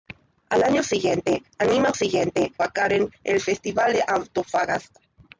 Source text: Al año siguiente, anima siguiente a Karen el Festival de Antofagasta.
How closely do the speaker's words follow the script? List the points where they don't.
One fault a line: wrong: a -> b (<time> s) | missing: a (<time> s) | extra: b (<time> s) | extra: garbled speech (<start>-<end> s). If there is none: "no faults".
no faults